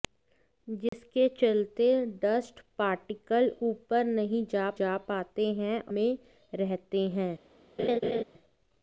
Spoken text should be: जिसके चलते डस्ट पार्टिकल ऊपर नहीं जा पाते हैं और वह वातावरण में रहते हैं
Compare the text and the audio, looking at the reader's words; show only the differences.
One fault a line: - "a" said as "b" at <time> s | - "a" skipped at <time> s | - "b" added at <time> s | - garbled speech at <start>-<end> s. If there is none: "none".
- "जा" added at 4.8 s
- "और वह वातावरण" skipped at 5.8 s